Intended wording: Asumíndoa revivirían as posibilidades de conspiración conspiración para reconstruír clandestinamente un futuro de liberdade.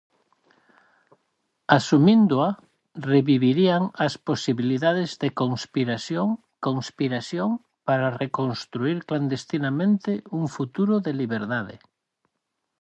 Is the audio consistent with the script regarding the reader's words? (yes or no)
yes